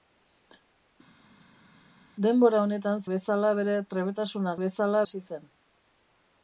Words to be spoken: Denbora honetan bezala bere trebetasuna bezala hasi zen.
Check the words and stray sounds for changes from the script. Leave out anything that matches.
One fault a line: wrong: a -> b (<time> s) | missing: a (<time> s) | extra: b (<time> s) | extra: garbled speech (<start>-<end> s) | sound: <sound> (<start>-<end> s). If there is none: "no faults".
no faults